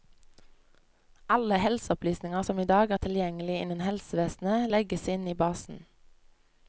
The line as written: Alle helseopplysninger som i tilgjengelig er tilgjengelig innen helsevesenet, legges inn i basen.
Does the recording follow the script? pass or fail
fail